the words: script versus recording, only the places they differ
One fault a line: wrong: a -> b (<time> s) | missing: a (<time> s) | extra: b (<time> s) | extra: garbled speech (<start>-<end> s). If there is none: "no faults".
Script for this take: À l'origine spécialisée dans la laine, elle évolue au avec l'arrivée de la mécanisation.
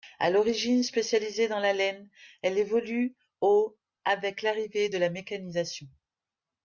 no faults